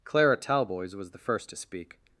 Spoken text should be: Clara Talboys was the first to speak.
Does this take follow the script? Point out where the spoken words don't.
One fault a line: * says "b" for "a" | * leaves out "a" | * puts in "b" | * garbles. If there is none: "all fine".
all fine